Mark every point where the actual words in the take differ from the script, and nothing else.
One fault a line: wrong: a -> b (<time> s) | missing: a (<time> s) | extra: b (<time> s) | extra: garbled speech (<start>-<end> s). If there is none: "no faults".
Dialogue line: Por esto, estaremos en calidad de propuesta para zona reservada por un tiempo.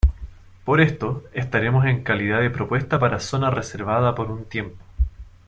no faults